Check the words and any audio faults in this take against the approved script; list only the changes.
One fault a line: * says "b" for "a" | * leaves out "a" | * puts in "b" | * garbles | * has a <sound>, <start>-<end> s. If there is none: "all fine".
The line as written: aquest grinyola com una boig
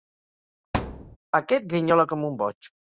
* has a thud, 0.7-1.2 s
* says "un" for "una"